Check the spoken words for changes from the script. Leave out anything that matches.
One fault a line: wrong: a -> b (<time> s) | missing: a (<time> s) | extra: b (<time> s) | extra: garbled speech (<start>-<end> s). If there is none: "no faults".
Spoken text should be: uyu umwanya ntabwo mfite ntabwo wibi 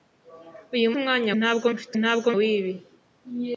no faults